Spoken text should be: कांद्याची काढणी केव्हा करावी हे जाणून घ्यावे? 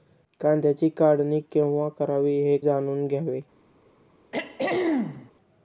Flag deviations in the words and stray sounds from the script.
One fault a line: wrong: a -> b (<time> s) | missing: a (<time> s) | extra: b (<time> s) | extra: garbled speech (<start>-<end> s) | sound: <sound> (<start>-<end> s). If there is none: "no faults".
sound: throat clearing (4.3-5.3 s)